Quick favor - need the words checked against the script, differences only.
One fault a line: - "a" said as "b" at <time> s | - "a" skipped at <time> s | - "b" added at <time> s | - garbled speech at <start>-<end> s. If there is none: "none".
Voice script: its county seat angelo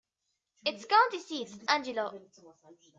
none